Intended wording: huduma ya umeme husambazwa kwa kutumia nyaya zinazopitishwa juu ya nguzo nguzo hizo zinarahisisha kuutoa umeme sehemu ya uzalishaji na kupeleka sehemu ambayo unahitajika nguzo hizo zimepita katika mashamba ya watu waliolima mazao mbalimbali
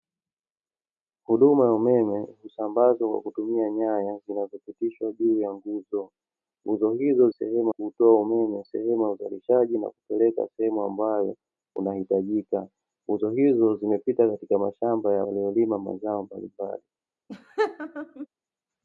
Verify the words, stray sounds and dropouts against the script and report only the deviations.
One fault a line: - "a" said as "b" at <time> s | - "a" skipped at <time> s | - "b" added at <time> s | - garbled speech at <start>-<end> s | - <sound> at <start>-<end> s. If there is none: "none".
- "zinarahisisha" said as "sehemu" at 7.3 s
- "watu" skipped at 15.3 s
- laugh at 17.3-18.3 s